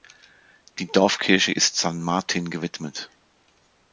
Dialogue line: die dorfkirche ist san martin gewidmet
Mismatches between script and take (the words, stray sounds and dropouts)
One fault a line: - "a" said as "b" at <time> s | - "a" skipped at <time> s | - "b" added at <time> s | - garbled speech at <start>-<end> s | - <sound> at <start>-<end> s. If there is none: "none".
none